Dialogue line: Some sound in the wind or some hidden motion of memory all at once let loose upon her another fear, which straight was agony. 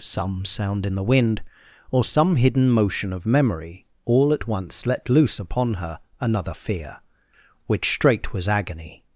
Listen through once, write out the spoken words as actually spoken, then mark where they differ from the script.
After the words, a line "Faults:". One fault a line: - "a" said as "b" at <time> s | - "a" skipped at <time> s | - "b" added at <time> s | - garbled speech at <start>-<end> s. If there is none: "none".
Some sound in the wind or some hidden motion of memory all at once let loose upon her another fear, which straight was agony.
Faults:
none